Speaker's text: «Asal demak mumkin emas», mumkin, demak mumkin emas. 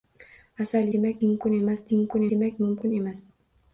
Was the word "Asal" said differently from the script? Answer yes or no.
no